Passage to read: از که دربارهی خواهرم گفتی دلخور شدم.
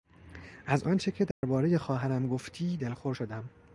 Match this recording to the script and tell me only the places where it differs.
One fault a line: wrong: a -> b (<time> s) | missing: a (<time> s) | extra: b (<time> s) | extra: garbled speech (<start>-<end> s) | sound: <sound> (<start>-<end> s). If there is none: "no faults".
extra: آنچه (0.8 s)
sound: dropout (1.3-1.4 s)